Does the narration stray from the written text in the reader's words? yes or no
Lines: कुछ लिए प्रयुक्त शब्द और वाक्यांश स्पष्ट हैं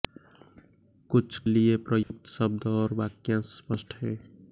no